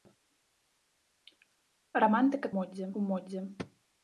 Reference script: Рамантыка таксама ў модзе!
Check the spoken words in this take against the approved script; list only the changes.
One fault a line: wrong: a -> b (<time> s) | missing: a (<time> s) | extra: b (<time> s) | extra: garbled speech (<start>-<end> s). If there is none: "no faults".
wrong: таксама -> модзе (2.6 s)